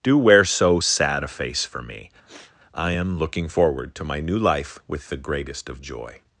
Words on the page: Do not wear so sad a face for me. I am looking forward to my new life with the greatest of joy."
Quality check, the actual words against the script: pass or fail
fail